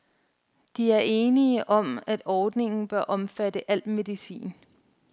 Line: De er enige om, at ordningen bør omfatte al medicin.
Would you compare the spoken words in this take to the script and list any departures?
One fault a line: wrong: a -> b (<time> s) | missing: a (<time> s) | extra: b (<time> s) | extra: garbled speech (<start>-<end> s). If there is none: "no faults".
no faults